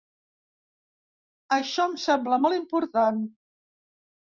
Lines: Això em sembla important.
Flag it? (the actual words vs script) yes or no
yes